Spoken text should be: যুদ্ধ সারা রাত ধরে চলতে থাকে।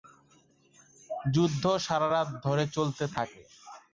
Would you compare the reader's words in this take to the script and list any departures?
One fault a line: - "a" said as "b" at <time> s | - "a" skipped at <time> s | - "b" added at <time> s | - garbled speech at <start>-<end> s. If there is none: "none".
none